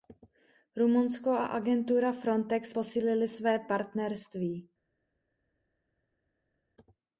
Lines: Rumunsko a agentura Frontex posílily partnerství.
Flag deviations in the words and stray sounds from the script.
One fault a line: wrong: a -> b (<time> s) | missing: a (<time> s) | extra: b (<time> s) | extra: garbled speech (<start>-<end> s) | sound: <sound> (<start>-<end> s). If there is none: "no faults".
extra: své (3.3 s)